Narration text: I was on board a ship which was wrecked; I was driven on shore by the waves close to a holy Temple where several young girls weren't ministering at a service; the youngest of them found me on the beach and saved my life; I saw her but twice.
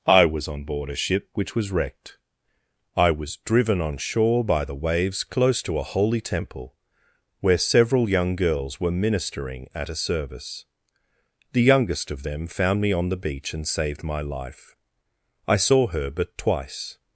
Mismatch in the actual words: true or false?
true